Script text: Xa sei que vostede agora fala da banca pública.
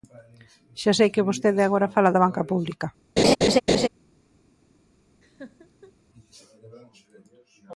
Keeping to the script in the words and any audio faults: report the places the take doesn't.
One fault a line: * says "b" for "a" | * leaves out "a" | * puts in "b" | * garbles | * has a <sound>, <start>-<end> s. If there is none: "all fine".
* has a laugh, 3.2-3.9 s
* has a laugh, 5.2-5.9 s